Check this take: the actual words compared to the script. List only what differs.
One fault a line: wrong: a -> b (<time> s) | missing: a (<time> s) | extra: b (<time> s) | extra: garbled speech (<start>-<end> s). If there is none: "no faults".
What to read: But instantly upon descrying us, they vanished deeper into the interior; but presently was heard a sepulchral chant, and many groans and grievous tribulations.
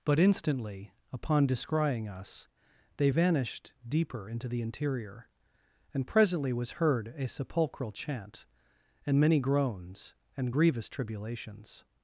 wrong: but -> and (5.9 s)